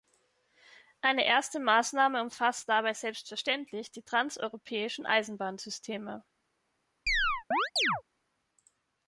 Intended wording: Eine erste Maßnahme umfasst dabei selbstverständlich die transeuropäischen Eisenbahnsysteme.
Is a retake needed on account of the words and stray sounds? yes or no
yes